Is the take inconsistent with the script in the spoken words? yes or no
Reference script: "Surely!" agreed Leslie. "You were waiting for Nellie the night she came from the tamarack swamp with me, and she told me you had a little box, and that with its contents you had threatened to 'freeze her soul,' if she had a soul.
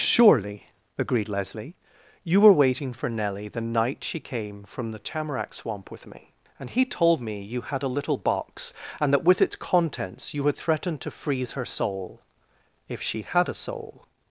yes